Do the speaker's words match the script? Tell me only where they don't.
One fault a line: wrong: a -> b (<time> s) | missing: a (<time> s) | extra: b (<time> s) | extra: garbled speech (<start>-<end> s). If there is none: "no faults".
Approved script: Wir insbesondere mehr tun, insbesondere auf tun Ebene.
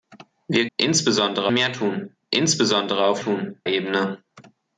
no faults